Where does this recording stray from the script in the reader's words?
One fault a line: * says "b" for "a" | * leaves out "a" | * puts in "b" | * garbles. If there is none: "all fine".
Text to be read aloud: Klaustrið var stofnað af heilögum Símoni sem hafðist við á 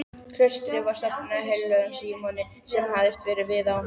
all fine